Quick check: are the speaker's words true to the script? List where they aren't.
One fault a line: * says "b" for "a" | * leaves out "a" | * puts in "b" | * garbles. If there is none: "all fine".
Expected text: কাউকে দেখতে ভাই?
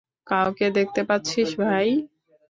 * puts in "পাচ্ছিস"